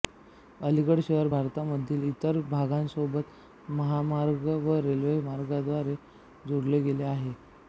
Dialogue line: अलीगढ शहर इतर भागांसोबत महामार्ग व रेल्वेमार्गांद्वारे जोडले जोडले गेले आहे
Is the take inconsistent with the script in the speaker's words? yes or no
yes